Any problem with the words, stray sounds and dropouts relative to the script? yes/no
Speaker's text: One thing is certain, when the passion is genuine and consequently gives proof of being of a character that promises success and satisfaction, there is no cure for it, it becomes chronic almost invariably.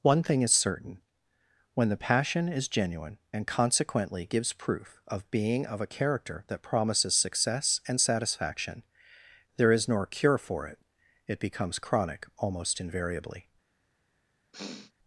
yes